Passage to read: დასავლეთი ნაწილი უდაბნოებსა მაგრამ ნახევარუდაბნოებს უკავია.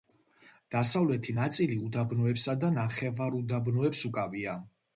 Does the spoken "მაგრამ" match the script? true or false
false